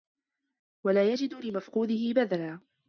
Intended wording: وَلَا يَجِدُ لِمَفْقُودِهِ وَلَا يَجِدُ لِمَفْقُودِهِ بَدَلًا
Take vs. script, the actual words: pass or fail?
fail